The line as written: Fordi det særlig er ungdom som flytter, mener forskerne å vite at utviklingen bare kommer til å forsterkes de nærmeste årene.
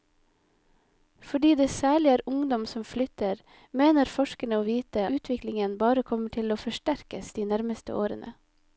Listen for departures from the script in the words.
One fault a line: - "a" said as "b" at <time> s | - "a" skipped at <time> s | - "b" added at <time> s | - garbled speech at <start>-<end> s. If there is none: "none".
- "at" skipped at 5.0 s